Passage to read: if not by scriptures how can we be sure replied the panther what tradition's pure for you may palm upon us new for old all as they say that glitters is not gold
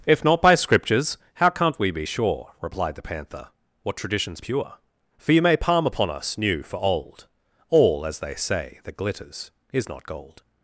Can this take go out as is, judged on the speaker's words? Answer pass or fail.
fail